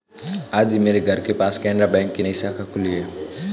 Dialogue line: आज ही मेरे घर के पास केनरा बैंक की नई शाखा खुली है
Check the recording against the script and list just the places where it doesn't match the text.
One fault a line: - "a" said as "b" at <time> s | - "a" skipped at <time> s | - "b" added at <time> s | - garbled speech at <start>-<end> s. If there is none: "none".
none